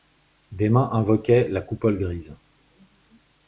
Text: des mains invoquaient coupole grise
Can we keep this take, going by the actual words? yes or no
no